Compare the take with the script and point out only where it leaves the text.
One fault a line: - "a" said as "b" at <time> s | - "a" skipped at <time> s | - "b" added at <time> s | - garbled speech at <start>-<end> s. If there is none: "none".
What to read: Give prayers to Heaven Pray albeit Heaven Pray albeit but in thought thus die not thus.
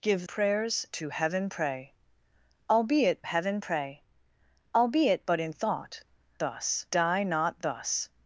none